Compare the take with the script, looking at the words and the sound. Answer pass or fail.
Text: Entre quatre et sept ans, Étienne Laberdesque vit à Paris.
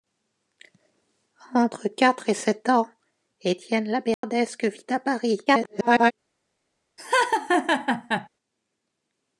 fail